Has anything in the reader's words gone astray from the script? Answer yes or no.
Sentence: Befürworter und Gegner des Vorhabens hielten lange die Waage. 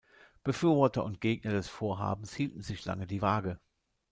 yes